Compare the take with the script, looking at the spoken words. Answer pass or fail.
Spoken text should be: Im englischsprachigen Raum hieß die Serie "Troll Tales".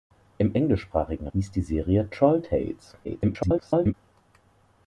fail